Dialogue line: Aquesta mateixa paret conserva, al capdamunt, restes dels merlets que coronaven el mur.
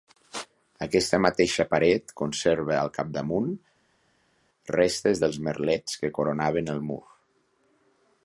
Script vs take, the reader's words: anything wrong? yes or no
no